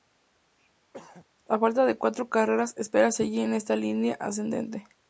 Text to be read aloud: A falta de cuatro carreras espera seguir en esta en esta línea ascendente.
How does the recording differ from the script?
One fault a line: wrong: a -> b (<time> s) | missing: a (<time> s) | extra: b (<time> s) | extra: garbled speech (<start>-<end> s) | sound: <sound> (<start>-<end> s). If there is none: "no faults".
sound: throat clearing (0.9-1.3 s)
missing: en esta (3.8 s)